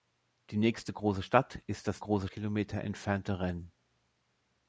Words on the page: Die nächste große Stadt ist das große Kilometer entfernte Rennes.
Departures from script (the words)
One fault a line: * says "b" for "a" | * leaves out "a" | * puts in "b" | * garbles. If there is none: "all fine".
all fine